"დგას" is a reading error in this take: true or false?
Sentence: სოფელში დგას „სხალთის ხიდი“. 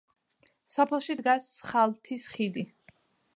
false